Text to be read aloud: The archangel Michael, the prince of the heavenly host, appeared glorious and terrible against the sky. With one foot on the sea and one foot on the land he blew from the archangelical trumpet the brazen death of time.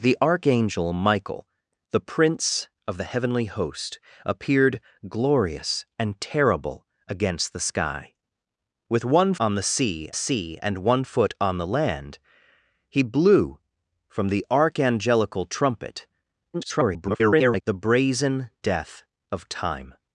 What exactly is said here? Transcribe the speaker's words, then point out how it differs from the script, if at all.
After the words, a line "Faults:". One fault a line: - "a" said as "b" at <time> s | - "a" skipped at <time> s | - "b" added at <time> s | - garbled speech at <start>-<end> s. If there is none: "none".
The archangel Michael, the prince of the heavenly host, appeared glorious and terrible against the sky. With one on the sea sea and one foot on the land he blew from the archangelical trumpet [garbled] the brazen death of time.
Faults:
- "foot" skipped at 9.3 s
- "sea" added at 10.1 s
- garbled speech at 16.5-17.6 s